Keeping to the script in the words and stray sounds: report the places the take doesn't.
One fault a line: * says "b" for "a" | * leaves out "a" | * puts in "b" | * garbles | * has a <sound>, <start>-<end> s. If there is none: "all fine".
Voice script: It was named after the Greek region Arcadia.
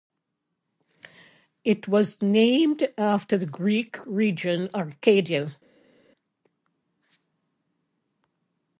all fine